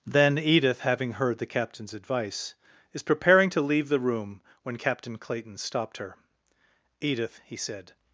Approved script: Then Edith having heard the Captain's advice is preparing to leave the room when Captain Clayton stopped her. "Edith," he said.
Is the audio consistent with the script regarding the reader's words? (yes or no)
yes